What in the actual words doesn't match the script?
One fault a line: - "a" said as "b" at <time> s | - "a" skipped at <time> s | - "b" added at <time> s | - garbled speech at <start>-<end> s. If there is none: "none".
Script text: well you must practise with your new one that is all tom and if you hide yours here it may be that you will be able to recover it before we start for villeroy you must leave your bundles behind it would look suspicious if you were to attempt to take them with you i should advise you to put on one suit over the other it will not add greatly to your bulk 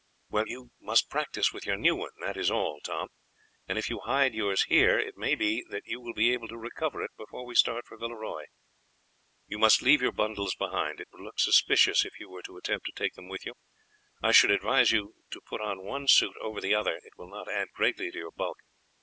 none